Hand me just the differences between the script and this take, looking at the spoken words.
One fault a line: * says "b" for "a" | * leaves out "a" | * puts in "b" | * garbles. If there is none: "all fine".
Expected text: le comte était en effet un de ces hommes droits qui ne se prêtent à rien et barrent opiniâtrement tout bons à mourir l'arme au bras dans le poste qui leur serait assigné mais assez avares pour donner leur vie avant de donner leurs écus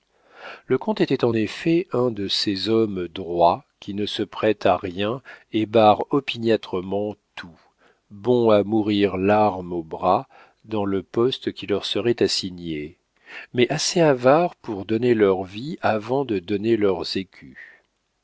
all fine